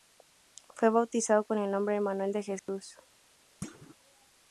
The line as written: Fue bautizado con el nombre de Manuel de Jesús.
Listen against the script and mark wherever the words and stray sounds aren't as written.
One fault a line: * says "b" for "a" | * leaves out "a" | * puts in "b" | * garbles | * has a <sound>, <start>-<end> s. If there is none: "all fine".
* has a dropout, 2.6-2.7 s
* has a thud, 3.6-4.0 s